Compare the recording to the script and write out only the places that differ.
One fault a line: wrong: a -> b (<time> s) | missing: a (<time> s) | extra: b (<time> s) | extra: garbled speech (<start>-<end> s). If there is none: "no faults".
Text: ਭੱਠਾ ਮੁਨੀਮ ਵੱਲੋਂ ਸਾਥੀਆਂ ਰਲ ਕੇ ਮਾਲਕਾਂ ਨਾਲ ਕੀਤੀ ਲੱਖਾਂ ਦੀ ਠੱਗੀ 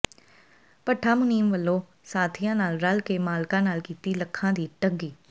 extra: ਨਾਲ (2.5 s)